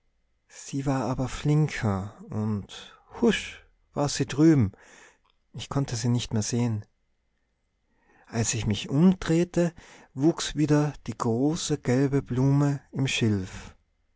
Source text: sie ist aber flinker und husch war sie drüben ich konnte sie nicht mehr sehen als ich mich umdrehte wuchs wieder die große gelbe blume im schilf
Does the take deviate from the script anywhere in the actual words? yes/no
yes